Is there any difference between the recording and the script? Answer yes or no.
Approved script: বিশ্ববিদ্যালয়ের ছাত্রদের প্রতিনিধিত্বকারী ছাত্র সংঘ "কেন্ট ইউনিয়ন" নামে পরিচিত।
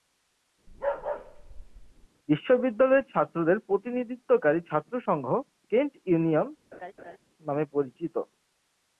no